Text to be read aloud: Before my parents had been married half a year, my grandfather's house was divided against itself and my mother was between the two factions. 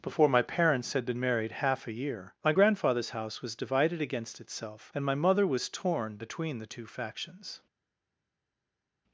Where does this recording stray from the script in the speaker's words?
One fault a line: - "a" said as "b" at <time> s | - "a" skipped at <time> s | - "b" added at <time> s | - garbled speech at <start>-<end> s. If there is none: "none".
- "torn" added at 5.7 s